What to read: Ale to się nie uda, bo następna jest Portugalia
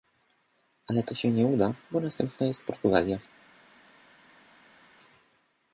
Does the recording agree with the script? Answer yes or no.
yes